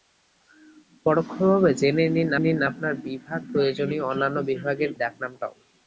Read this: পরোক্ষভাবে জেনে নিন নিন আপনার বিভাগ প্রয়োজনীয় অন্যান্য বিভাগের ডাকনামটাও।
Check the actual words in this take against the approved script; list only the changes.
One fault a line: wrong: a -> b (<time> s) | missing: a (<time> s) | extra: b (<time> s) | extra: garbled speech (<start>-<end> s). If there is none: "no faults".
no faults